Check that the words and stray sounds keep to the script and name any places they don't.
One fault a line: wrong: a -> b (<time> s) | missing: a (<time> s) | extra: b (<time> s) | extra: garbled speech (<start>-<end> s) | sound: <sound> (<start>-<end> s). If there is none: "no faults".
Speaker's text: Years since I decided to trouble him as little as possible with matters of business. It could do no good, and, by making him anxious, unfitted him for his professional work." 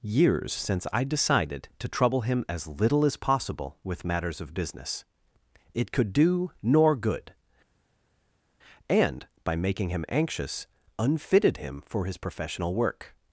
wrong: no -> nor (6.6 s)